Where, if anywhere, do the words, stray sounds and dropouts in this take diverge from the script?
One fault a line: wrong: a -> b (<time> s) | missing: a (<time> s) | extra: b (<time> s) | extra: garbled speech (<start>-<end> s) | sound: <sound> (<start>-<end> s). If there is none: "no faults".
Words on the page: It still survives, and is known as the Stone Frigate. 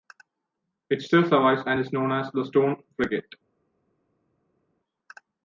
no faults